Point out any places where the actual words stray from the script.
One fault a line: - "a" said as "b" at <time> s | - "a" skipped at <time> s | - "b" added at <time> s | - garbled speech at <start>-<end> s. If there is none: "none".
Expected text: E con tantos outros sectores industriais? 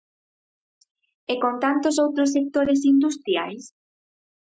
none